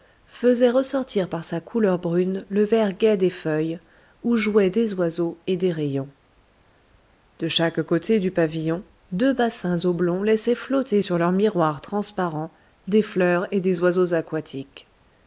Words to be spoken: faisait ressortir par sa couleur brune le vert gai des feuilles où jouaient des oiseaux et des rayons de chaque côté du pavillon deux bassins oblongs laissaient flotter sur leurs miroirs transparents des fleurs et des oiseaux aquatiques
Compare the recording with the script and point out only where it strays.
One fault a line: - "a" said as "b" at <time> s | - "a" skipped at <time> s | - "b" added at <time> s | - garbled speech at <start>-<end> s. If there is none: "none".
none